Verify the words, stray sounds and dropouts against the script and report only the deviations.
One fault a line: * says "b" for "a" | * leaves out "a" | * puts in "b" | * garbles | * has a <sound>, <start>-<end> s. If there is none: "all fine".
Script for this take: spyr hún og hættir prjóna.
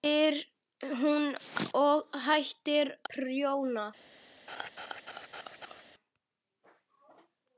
* has a laugh, 4.5-5.8 s